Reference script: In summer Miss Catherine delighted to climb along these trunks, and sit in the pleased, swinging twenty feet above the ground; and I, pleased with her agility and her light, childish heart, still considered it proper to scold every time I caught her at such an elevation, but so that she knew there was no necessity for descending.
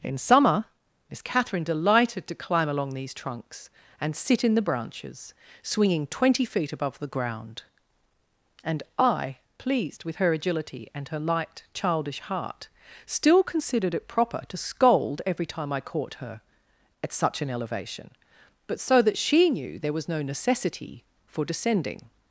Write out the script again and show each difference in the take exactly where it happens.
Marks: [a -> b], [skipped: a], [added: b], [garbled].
In summer Miss Catherine delighted to climb along these trunks, and sit in the [pleased, -> branches] swinging twenty feet above the ground; and I, pleased with her agility and her light, childish heart, still considered it proper to scold every time I caught her at such an elevation, but so that she knew there was no necessity for descending.